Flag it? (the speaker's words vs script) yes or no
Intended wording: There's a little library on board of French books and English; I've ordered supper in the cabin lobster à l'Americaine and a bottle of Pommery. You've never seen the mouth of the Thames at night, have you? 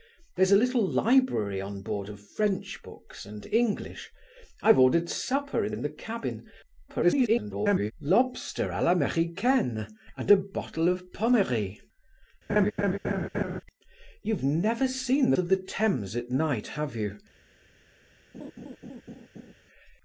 yes